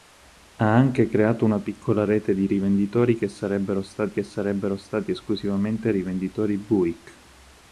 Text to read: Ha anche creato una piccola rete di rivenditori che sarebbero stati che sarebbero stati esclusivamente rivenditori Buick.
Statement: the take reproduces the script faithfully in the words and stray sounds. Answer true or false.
true